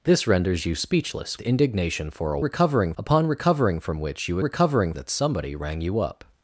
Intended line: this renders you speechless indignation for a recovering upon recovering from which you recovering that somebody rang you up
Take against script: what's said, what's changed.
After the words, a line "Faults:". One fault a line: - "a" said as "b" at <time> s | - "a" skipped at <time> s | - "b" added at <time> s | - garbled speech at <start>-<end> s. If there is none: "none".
this renders you speechless indignation for a recovering upon recovering from which you recovering that somebody rang you up
Faults:
none